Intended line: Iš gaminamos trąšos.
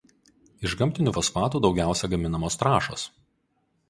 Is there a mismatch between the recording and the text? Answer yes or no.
yes